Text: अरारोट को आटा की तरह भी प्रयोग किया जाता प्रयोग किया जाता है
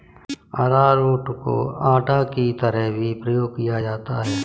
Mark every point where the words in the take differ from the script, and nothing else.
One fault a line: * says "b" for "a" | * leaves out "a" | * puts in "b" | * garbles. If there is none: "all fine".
* leaves out "प्रयोग किया जाता"